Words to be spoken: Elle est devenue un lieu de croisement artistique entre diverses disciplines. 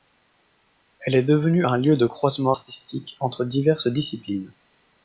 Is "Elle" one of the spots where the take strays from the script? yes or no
no